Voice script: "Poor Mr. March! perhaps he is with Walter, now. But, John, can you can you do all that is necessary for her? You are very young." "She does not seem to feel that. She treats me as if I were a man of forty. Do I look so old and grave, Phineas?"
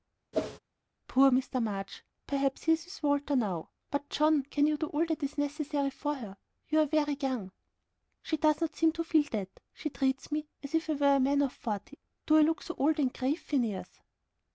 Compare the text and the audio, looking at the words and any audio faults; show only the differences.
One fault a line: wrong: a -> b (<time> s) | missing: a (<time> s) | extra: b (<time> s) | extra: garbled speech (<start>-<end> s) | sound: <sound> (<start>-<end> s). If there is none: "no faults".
sound: whoosh (0.3-0.6 s)
missing: can you (4.8 s)